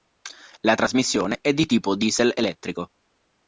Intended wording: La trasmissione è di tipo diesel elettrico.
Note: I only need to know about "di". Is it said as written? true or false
true